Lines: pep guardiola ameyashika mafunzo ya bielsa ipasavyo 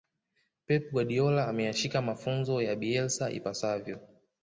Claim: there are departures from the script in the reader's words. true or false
false